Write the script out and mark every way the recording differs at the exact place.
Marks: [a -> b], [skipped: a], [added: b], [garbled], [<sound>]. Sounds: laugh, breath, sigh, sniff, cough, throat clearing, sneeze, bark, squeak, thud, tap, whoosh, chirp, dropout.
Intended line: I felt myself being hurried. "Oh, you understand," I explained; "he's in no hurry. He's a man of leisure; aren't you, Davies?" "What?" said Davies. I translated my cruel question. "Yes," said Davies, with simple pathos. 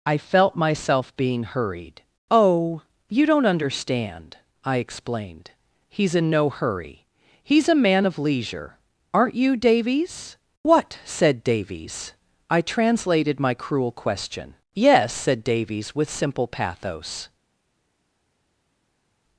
I felt myself being hurried. "Oh, you [added: don't] understand," I explained; "he's in no hurry. He's a man of leisure; aren't you, Davies?" "What?" said Davies. I translated my cruel question. "Yes," said Davies, with simple pathos.